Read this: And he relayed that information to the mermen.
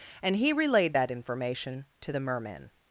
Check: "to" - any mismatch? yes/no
no